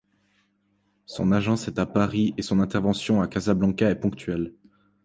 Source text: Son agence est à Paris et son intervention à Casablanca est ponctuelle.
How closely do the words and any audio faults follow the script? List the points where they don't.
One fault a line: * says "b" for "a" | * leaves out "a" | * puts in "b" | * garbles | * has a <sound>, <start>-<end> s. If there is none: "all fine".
all fine